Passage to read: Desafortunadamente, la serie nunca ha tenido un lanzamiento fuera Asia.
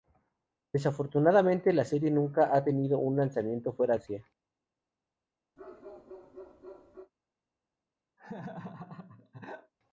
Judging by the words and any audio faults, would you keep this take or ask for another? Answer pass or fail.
fail